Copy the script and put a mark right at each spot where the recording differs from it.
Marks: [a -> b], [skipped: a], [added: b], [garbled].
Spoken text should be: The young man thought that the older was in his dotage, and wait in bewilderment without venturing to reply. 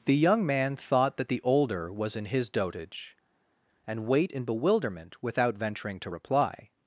The young man thought that the older was in his dotage, and wait in bewilderment without venturing to reply.